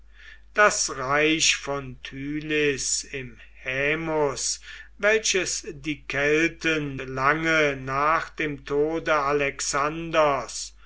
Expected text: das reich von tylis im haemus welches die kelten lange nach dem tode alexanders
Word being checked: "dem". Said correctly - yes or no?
yes